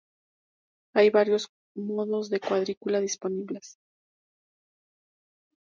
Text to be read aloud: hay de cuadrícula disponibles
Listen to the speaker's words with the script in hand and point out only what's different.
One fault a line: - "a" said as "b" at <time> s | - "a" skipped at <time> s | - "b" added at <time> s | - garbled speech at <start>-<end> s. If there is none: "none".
- "varios modos" added at 1.1 s